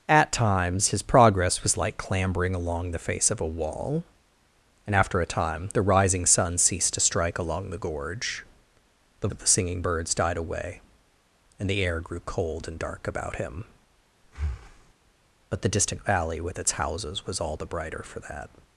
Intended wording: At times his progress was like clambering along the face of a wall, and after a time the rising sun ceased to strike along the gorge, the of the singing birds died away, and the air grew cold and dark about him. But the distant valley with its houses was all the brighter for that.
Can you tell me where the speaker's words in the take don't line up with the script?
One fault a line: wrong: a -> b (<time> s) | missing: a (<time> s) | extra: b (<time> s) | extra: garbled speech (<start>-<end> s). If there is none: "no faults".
no faults